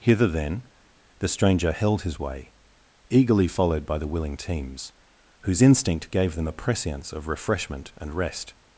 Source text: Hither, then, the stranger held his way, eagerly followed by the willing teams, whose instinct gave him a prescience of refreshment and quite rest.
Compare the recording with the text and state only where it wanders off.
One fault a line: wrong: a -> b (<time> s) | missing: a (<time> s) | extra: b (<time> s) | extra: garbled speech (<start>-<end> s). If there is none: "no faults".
wrong: him -> them (6.4 s)
missing: quite (8.1 s)